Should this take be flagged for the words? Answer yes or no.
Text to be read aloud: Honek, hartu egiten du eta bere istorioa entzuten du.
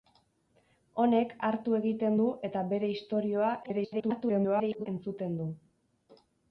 yes